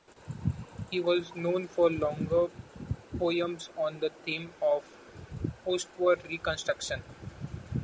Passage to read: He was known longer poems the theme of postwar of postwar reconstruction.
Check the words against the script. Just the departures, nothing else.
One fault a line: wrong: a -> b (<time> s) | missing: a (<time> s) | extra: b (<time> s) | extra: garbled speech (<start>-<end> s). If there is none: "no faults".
extra: for (1.7 s)
extra: on (3.8 s)
missing: of postwar (6.3 s)